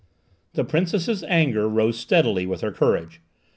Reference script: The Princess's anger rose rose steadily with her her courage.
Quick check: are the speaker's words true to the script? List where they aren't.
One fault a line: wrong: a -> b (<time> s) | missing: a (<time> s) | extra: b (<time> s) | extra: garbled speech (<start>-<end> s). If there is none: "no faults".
missing: rose (2.0 s)
missing: her (2.7 s)